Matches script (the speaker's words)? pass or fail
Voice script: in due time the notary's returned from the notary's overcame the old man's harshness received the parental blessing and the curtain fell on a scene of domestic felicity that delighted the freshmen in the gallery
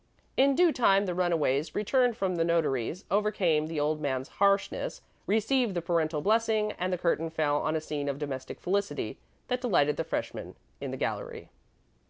fail